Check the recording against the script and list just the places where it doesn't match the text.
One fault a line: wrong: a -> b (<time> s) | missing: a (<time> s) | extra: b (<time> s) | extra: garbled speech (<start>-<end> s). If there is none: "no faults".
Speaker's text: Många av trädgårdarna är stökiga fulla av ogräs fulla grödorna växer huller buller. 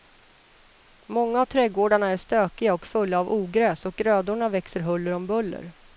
extra: och (2.7 s)
wrong: fulla -> och (3.8 s)
extra: om (5.1 s)